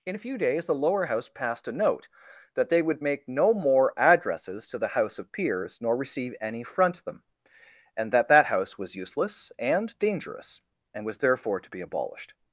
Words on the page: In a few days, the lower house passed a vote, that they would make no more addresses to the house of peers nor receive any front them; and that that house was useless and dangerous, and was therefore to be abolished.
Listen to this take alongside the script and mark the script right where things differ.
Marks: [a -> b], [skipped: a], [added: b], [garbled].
In a few days, the lower house passed a [vote, -> note] that they would make no more addresses to the house of peers nor receive any front them; and that that house was useless and dangerous, and was therefore to be abolished.